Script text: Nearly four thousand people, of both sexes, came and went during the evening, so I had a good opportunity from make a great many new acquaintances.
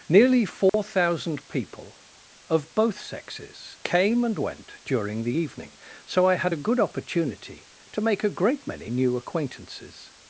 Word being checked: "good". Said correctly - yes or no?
yes